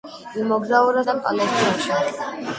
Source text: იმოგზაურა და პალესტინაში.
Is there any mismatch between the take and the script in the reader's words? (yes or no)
no